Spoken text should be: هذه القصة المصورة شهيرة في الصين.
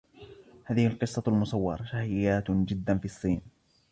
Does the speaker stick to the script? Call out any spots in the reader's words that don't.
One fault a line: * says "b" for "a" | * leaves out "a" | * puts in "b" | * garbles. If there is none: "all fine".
* puts in "جدا"